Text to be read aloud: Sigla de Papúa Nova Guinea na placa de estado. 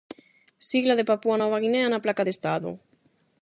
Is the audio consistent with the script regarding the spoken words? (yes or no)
yes